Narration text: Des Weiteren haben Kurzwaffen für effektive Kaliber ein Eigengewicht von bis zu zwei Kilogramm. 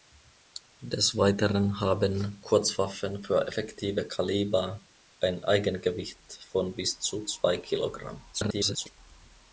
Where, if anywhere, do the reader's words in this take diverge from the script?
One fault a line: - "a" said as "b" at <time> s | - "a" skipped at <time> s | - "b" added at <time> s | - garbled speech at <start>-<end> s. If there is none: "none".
- garbled speech at 8.3-9.0 s